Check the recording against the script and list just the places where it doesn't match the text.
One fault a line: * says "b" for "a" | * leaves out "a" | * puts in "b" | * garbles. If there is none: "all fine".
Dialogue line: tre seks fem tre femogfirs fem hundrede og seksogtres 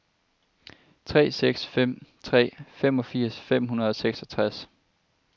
all fine